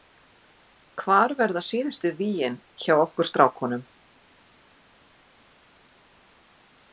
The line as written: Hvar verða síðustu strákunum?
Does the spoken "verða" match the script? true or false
true